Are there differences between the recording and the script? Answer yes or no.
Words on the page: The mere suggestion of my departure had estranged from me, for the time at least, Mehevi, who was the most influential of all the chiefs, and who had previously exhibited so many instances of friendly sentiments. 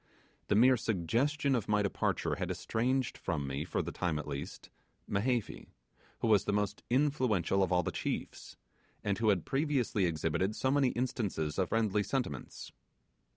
no